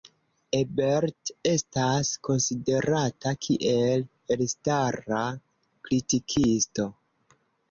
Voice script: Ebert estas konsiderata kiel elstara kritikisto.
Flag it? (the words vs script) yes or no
no